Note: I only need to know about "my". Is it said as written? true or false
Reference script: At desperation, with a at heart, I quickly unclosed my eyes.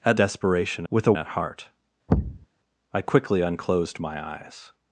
true